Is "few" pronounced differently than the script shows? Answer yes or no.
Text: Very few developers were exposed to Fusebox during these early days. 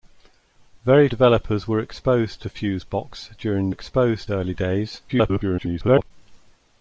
yes